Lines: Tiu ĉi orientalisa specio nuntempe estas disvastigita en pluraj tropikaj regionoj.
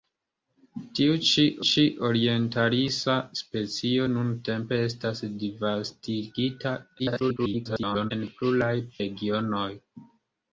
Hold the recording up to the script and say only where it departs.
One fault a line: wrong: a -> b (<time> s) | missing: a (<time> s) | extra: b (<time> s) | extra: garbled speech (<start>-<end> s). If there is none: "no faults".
extra: ĉi (1.7 s)
extra: garbled speech (7.0-8.1 s)
missing: tropikaj (8.7 s)